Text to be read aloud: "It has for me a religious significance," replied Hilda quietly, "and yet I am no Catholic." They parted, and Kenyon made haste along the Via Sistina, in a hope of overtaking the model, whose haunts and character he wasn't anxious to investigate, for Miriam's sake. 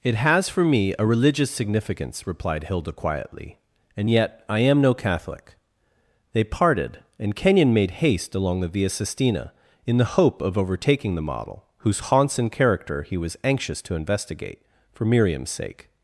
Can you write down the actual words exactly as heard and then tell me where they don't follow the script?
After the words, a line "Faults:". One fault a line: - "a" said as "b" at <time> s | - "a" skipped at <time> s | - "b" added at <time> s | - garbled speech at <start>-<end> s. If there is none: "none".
"It has for me a religious significance," replied Hilda quietly, "and yet I am no Catholic." They parted, and Kenyon made haste along the Via Sistina, in the hope of overtaking the model, whose haunts and character he was anxious to investigate, for Miriam's sake.
Faults:
- "a" said as "the" at 10.0 s
- "wasn't" said as "was" at 13.2 s